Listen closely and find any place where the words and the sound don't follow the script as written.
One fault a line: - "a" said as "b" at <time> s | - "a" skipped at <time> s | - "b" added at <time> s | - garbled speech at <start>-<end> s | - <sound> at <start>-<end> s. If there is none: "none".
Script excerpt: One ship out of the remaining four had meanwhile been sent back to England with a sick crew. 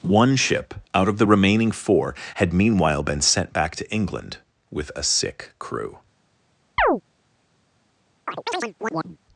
- chirp at 6.8-7.0 s
- chirp at 8.3-9.2 s